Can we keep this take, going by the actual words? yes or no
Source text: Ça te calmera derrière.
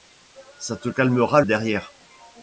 yes